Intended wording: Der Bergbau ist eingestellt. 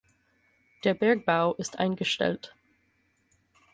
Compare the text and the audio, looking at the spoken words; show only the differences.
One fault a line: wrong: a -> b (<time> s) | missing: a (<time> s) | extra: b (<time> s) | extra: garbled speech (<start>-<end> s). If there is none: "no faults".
no faults